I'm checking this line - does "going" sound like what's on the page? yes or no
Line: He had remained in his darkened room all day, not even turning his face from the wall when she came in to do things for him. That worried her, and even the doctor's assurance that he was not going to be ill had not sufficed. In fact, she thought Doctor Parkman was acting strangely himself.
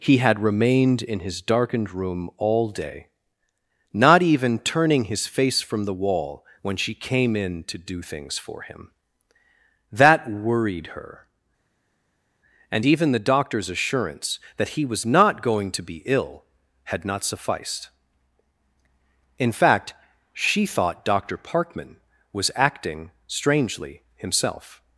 yes